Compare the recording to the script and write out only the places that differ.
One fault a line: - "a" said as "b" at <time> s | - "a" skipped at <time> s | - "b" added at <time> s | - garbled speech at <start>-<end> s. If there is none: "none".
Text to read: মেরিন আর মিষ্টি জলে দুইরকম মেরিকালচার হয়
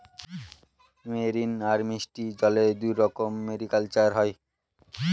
none